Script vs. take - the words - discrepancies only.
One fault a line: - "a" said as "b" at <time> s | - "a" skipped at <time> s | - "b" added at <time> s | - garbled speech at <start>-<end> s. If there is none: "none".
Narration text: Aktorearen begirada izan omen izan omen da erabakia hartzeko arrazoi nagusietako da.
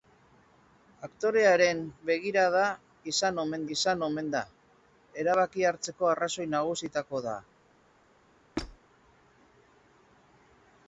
none